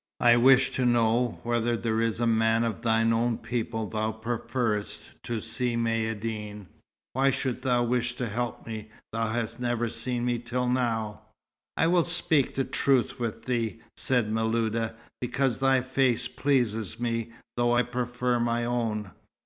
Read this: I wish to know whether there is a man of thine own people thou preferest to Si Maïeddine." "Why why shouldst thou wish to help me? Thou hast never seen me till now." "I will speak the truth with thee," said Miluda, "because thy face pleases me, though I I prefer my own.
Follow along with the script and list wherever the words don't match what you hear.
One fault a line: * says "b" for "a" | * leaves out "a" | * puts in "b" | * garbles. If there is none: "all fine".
* leaves out "why"
* leaves out "I"